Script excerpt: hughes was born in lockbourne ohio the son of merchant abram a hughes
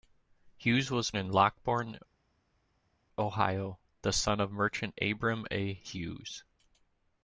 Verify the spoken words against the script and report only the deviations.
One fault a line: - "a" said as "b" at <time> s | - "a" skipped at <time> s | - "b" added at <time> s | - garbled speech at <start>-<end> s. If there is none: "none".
- "born" skipped at 1.1 s